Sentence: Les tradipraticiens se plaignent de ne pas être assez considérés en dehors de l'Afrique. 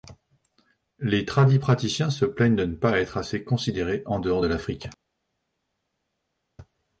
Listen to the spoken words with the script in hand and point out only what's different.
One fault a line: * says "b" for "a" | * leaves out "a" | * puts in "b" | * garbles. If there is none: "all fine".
all fine